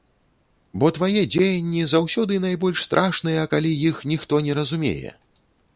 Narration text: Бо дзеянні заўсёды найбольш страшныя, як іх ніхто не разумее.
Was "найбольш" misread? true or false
false